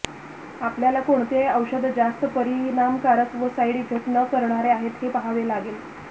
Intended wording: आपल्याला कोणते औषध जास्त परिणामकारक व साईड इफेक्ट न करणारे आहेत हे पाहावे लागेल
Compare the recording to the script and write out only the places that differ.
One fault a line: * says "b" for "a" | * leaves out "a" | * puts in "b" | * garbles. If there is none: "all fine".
all fine